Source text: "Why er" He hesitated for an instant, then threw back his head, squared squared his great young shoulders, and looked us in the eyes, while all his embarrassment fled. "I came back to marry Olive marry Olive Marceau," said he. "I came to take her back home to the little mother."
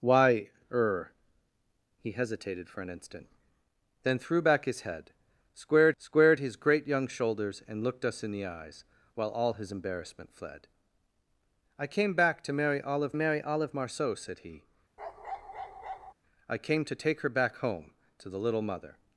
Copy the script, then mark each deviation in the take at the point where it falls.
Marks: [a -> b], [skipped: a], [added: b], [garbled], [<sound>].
"Why er" He hesitated for an instant, then threw back his head, squared squared his great young shoulders, and looked us in the eyes, while all his embarrassment fled. "I came back to marry Olive marry Olive Marceau," said he. [bark] "I came to take her back home to the little mother."